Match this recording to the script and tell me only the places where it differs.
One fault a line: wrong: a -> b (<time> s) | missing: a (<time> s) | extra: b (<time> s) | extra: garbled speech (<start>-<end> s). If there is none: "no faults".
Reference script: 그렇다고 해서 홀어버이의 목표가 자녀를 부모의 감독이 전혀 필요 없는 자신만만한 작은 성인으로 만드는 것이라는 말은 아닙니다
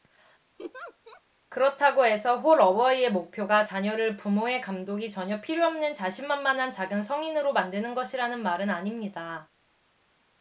no faults